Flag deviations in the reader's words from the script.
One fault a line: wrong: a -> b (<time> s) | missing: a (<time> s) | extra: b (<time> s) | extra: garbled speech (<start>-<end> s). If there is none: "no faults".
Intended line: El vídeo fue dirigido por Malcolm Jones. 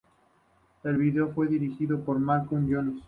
no faults